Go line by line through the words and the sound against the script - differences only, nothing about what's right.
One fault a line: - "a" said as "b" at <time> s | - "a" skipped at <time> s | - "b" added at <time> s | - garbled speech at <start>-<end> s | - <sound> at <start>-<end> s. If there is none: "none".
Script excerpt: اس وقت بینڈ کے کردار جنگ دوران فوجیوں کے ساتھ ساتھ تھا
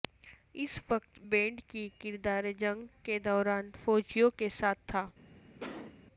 - "کے" said as "کی" at 1.7 s
- "کے" added at 3.0 s
- "ساتھ" skipped at 4.9 s
- cough at 5.6-6.0 s